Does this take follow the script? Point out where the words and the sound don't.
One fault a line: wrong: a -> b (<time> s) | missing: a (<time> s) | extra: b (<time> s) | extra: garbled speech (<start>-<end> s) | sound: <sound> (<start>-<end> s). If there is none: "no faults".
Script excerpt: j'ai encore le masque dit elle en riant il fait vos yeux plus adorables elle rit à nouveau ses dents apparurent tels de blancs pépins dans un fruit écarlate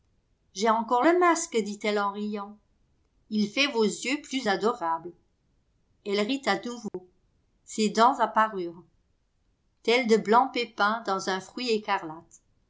sound: dropout (6.9-6.9 s)